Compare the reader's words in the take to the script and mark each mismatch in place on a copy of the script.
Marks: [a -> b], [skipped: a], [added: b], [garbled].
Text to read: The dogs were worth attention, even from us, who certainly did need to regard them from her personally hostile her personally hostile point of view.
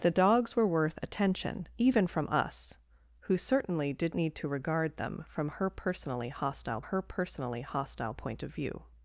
The dogs were worth attention, even from us, who certainly did need to regard them from her personally hostile her personally hostile point of view.